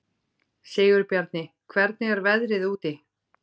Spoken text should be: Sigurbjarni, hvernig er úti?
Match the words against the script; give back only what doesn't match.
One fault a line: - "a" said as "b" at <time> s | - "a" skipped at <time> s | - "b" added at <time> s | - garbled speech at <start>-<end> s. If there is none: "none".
- "veðrið" added at 2.3 s